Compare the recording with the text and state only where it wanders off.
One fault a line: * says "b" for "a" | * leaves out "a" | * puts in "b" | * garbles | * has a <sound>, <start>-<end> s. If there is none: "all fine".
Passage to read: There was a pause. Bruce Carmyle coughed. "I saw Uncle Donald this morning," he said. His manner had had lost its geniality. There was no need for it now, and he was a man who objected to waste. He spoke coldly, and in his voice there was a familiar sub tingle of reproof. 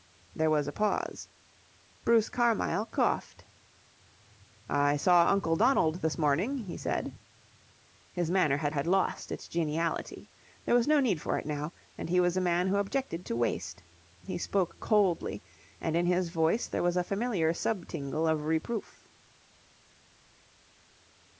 all fine